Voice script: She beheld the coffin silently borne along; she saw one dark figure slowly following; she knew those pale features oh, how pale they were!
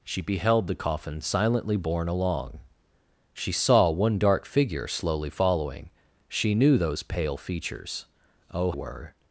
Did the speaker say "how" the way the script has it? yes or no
no